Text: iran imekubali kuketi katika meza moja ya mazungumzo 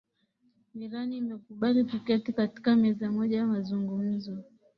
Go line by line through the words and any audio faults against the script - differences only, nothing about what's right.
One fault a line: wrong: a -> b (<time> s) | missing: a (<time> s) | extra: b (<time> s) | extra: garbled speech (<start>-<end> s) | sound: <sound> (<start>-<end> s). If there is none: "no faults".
no faults